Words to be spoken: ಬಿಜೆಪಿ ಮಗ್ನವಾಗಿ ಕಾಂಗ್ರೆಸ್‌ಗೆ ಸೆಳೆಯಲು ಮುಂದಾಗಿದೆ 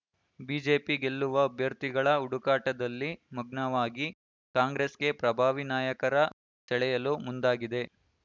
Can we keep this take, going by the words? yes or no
no